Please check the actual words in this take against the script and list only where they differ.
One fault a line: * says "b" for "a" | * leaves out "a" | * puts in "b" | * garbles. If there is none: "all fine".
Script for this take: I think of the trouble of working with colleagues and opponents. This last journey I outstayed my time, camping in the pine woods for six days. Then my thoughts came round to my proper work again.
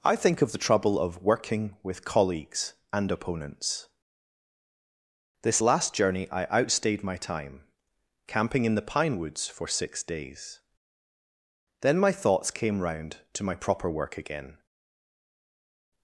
all fine